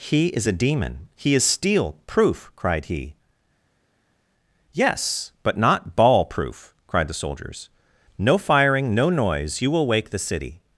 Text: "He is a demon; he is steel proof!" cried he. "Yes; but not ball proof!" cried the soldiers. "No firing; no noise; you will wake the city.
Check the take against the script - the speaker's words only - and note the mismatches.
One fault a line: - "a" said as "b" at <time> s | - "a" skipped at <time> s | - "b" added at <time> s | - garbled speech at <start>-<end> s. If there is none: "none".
none